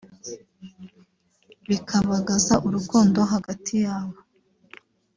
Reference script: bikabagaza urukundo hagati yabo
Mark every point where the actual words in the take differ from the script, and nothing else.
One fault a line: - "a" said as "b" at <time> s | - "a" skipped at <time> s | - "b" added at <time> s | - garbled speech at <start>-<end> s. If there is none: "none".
none